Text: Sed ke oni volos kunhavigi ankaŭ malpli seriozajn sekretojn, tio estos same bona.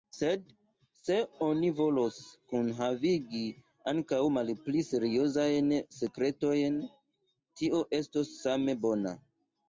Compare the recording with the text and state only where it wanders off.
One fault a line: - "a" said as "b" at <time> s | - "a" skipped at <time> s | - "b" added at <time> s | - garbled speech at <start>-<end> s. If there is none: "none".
- "ke" said as "se" at 1.0 s